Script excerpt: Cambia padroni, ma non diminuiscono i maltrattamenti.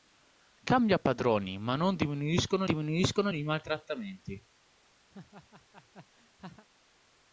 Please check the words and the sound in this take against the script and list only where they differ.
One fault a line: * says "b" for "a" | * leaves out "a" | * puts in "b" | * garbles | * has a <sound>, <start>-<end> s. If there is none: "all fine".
* puts in "diminuiscono"
* has a laugh, 5.1-6.7 s